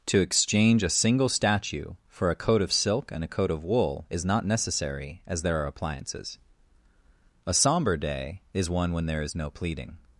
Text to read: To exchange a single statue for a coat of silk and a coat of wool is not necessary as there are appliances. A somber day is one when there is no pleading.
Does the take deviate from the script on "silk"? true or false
false